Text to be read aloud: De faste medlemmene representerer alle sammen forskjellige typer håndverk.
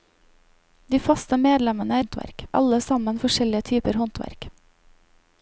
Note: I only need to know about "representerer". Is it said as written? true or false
false